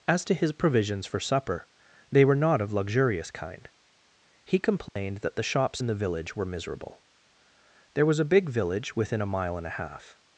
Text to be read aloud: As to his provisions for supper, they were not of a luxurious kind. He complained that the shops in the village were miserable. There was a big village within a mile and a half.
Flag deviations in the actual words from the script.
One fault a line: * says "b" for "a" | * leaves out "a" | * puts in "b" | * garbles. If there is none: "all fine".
* leaves out "a"